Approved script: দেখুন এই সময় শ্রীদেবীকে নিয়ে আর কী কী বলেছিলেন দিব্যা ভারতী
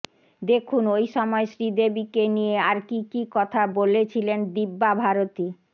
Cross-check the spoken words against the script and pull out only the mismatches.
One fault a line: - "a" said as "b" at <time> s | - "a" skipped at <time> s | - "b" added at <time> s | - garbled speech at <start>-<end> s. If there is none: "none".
- "এই" said as "ওই" at 0.9 s
- "কথা" added at 3.4 s